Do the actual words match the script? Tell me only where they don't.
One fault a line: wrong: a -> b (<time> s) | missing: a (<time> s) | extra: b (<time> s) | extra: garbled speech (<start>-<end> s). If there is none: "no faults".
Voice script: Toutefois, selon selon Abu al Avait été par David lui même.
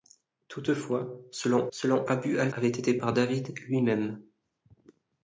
no faults